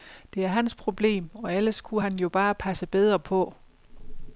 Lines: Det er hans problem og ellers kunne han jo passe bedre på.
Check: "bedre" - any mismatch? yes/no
no